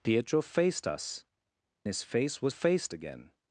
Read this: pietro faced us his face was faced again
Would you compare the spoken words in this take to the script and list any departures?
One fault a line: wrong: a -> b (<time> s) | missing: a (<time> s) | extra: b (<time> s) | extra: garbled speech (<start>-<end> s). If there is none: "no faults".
no faults